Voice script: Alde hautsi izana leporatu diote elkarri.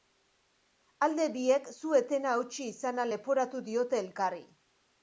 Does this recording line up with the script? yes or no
no